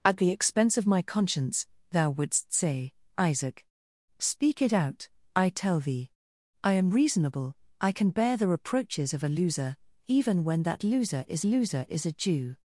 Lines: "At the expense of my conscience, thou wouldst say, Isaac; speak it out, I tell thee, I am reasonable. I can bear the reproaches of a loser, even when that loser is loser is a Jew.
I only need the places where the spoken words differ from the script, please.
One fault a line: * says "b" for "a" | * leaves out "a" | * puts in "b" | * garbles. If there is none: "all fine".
all fine